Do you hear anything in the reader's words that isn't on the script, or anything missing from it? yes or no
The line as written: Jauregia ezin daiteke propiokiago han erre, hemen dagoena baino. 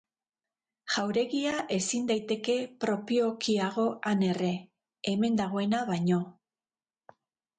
no